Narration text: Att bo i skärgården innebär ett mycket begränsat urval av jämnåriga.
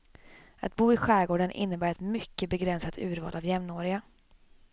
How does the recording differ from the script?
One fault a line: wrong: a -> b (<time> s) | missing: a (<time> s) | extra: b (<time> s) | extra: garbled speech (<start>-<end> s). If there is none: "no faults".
no faults